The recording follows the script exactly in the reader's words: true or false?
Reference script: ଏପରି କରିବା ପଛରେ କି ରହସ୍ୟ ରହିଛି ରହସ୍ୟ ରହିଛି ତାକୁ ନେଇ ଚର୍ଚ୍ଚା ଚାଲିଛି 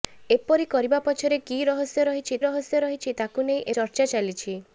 true